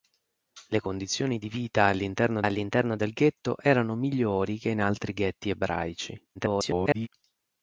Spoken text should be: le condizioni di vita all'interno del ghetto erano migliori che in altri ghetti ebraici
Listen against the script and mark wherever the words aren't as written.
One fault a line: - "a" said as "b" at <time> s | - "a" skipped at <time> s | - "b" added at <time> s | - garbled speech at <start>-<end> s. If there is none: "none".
- "all'interno" added at 2.4 s
- garbled speech at 6.3-7.1 s